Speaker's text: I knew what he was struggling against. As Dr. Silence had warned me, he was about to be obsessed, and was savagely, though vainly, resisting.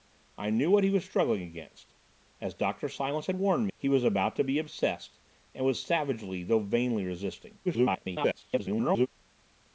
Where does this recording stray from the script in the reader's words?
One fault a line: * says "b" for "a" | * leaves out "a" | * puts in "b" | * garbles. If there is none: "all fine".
* leaves out "me"
* garbles